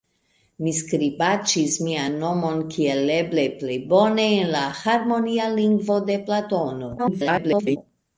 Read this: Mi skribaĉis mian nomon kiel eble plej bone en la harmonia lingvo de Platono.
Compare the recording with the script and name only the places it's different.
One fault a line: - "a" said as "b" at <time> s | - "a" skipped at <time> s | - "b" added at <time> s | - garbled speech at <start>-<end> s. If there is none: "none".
- garbled speech at 7.0-7.8 s